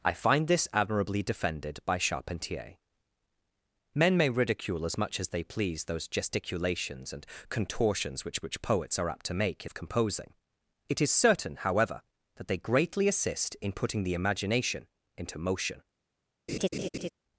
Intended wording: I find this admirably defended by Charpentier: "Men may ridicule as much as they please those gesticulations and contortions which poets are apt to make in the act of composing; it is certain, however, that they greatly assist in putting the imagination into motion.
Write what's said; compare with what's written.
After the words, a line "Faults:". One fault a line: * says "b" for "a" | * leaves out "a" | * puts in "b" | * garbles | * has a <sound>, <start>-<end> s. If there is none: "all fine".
I find this admirably defended by Charpentier: "Men may ridicule as much as they please those gesticulations and contortions which which poets are apt to make in of composing; it is certain, however, that they greatly assist in putting the imagination into motion.
Faults:
* puts in "which"
* leaves out "the act"
* has a laugh, 16.5-17.1 s